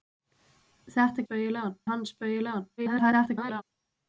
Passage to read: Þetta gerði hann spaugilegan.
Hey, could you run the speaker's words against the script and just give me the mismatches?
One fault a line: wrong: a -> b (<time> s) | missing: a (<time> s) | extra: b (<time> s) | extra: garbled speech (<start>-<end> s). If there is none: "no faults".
wrong: gerði -> spaugilegan (1.2 s)
extra: garbled speech (2.8-3.6 s)